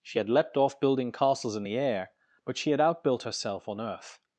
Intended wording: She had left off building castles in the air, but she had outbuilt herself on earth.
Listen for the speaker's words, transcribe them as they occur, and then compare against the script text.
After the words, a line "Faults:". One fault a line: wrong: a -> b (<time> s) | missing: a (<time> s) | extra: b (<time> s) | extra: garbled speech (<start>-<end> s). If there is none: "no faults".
She had leapt off building castles in the air, but she had outbuilt herself on earth.
Faults:
wrong: left -> leapt (0.3 s)